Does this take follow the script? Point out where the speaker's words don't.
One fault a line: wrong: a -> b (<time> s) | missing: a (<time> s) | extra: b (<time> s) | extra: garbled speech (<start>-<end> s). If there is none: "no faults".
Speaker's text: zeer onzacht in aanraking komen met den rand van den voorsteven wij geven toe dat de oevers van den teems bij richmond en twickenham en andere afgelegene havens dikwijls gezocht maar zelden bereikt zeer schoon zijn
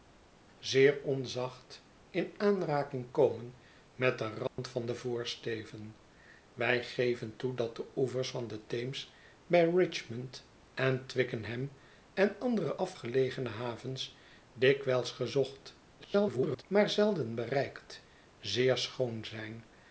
extra: garbled speech (16.0-16.6 s)